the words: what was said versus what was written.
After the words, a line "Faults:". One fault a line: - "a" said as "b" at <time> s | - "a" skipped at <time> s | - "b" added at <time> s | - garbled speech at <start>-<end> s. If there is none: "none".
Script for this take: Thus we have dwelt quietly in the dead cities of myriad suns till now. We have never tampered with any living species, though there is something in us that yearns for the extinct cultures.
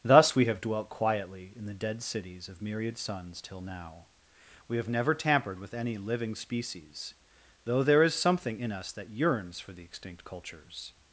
Thus we have dwelt quietly in the dead cities of myriad suns till now. We have never tampered with any living species, though there is something in us that yearns for the extinct cultures.
Faults:
none